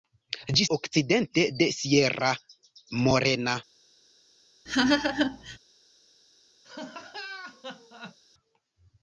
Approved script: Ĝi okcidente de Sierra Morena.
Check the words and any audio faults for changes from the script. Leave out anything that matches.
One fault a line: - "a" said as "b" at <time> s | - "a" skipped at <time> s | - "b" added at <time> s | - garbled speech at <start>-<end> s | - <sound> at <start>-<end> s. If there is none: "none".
- laugh at 4.7-5.6 s
- laugh at 6.6-8.2 s